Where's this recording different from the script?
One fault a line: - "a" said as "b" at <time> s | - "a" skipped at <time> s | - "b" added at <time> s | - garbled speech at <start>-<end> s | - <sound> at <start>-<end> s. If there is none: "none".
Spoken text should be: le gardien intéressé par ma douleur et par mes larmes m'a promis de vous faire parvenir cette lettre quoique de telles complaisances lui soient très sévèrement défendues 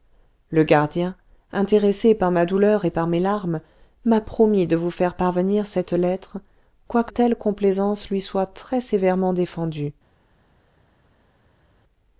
- "de" skipped at 7.1 s